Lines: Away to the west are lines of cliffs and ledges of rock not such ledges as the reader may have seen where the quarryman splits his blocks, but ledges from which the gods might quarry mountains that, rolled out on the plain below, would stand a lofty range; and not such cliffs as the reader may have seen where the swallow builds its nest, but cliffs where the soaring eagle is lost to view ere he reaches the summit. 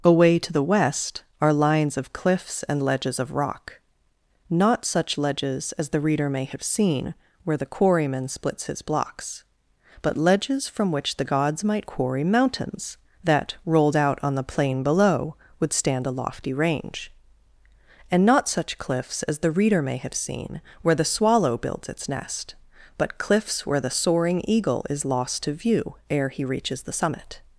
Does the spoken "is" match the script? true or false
true